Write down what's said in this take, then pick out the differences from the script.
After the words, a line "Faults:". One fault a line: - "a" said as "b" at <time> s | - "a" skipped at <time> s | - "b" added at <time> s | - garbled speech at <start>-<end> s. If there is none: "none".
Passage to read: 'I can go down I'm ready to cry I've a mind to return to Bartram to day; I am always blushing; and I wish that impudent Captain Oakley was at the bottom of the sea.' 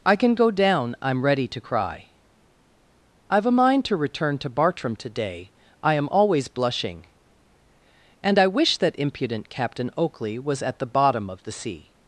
'I can go down I'm ready to cry I've a mind to return to Bartram to day; I am always blushing; and I wish that impudent Captain Oakley was at the bottom of the sea.'
Faults:
none